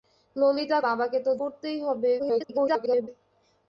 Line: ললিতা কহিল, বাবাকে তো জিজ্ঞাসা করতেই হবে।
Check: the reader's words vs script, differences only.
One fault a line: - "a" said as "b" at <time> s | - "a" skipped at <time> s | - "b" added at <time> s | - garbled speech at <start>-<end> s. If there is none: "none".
- "কহিল" skipped at 0.8 s
- "জিজ্ঞাসা" skipped at 1.3 s
- garbled speech at 2.2-3.1 s